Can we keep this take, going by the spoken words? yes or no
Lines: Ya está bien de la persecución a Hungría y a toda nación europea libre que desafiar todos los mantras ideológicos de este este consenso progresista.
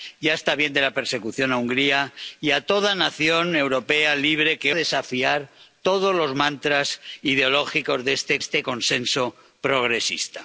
yes